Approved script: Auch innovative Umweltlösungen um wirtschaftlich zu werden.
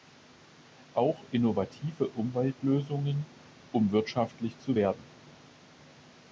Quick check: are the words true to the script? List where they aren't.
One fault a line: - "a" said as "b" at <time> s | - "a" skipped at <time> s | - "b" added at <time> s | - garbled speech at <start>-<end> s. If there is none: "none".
none